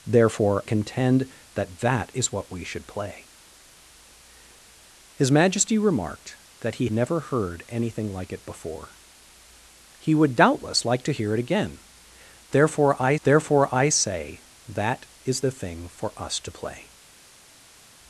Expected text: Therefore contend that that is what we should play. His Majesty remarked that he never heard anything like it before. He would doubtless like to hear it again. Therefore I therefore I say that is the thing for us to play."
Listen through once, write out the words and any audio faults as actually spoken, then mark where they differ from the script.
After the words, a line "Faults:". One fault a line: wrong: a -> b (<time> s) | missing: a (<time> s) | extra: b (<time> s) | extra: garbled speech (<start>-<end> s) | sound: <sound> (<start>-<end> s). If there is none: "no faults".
Therefore contend that that is what we should play. His Majesty remarked that he never heard anything like it before. He would doubtless like to hear it again. Therefore I therefore I say that is the thing for us to play."
Faults:
no faults